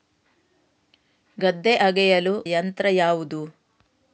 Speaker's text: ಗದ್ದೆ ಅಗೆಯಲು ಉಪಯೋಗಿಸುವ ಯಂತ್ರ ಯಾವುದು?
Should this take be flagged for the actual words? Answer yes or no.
yes